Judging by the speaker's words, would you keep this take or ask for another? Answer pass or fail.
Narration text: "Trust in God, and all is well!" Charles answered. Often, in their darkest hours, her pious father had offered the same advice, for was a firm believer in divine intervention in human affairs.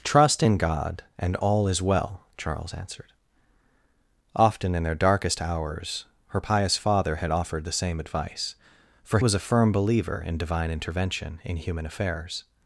pass